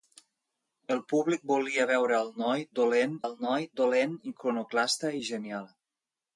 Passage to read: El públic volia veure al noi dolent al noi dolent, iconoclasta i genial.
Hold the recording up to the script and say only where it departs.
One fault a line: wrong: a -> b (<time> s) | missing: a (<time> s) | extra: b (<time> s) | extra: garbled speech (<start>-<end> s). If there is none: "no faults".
no faults